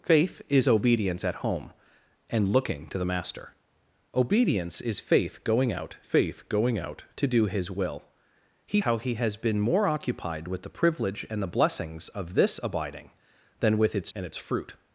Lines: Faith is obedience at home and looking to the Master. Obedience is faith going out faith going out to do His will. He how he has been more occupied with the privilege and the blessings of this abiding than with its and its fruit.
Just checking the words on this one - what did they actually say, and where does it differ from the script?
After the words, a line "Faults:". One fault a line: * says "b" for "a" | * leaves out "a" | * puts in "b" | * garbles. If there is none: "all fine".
Faith is obedience at home and looking to the Master. Obedience is faith going out faith going out to do His will. He how he has been more occupied with the privilege and the blessings of this abiding than with its and its fruit.
Faults:
all fine